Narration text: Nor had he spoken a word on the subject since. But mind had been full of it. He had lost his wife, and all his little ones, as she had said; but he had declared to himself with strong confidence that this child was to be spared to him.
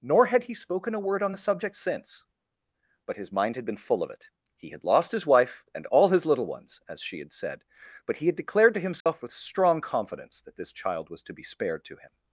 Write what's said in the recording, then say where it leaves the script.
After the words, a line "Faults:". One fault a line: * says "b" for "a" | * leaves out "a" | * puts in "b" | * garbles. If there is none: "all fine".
Nor had he spoken a word on the subject since. But his mind had been full of it. He had lost his wife, and all his little ones, as she had said; but he had declared to himself with strong confidence that this child was to be spared to him.
Faults:
* puts in "his"